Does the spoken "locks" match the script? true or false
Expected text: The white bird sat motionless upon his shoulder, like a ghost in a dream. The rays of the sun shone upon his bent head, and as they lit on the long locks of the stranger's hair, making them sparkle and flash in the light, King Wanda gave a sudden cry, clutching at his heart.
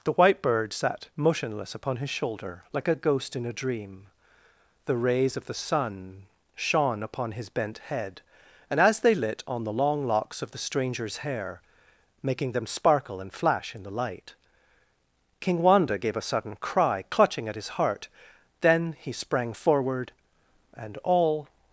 true